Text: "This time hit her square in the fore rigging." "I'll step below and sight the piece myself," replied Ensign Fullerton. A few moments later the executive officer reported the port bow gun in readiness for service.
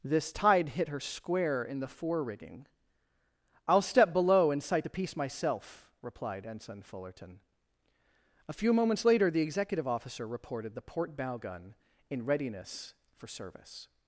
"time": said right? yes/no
no